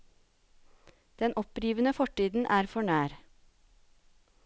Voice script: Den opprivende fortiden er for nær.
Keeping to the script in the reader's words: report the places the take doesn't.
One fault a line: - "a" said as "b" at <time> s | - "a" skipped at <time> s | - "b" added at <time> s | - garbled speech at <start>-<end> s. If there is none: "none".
none